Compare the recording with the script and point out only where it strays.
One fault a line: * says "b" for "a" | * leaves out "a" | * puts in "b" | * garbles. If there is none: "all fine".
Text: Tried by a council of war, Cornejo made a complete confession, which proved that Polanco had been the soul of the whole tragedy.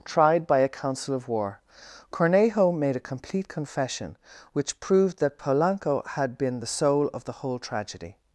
all fine